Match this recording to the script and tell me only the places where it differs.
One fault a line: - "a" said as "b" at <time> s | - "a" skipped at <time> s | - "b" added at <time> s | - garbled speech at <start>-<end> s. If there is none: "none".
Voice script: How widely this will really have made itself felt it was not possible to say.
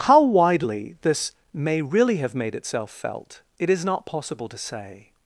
- "will" said as "may" at 1.5 s
- "was" said as "is" at 3.7 s